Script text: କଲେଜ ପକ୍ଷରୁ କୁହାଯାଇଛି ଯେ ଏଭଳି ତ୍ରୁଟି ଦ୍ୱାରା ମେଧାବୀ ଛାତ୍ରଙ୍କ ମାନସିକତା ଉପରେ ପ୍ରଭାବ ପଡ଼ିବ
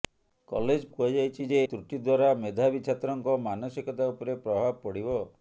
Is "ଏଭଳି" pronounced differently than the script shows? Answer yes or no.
yes